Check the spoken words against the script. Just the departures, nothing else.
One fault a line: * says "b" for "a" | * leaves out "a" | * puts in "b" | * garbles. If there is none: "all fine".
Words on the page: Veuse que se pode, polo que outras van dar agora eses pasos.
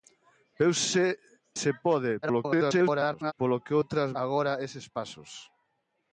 * leaves out "que"
* garbles
* leaves out "van dar"